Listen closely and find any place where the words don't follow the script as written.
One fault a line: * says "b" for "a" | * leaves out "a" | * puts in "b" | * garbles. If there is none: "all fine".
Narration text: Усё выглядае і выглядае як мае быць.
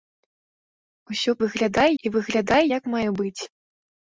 all fine